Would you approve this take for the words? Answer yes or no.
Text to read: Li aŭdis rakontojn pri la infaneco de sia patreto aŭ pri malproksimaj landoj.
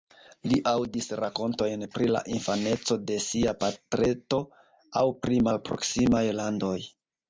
yes